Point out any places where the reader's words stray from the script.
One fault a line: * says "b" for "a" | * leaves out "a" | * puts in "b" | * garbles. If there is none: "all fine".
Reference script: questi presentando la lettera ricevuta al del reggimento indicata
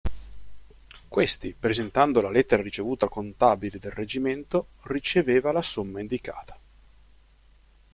* puts in "contabile"
* puts in "riceveva la somma"